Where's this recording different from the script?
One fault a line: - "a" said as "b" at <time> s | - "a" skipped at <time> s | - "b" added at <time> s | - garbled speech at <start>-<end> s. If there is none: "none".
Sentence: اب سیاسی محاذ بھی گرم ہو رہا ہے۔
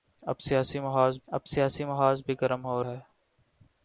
- "اب سیاسی محاذ" added at 1.3 s
- "رہا" skipped at 2.8 s